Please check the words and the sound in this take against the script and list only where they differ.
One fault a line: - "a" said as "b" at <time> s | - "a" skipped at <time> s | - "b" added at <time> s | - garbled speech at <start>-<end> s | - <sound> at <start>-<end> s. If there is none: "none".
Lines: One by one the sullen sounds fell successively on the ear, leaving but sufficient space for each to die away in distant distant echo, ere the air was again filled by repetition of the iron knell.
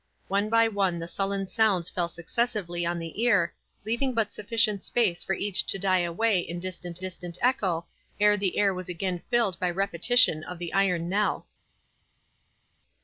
none